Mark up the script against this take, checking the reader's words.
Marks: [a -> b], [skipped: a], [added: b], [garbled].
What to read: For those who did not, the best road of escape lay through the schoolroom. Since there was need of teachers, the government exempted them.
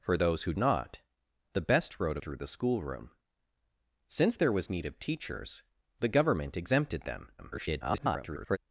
For those who [skipped: did] not, the best road [skipped: of escape lay] through the schoolroom. Since there was need of teachers, the government exempted them. [garbled]